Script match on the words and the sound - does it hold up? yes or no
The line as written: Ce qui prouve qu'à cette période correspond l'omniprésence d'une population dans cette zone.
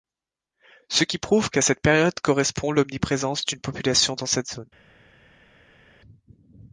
yes